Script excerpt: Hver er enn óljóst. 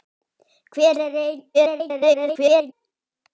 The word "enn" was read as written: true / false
true